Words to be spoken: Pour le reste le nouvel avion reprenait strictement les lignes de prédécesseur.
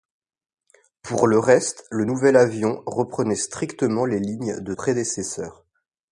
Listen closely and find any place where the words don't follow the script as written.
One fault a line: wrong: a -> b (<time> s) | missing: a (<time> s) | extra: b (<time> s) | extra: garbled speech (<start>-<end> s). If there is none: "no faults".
no faults